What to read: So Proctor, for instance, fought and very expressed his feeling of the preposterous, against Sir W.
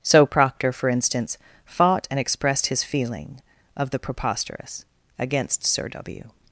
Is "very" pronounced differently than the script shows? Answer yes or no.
yes